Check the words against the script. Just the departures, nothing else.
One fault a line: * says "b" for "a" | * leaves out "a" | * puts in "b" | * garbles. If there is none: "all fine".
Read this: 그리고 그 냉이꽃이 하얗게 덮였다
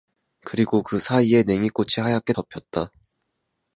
* puts in "사이에"